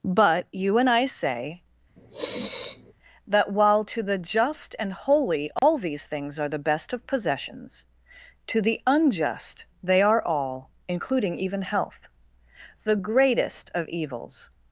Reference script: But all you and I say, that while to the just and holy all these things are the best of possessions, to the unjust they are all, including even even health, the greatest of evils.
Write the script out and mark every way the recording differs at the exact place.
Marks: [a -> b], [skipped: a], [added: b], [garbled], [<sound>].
But [skipped: all] you and I say, [sniff] that while to the just and holy all [dropout] these things are the best of possessions, to the unjust they are all, including even [skipped: even] health, the greatest of evils.